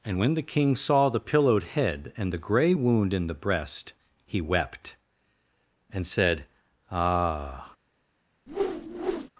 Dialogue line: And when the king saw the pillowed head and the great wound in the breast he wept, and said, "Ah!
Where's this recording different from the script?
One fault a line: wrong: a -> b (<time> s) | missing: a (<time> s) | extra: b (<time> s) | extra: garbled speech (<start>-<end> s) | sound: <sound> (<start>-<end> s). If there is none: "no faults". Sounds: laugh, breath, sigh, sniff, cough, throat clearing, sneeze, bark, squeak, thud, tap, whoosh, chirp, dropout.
wrong: great -> grey (2.4 s)
sound: whoosh (8.5-9.3 s)